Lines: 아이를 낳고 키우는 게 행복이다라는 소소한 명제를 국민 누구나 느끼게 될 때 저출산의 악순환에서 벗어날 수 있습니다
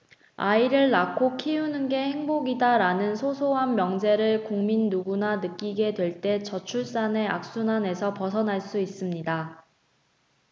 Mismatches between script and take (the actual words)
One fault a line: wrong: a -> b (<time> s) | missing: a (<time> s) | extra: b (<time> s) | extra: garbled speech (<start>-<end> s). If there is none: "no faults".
no faults